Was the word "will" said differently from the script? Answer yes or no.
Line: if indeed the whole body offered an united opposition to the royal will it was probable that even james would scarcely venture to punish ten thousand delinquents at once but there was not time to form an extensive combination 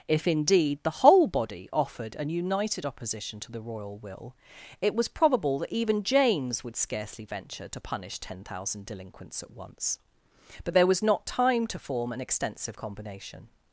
no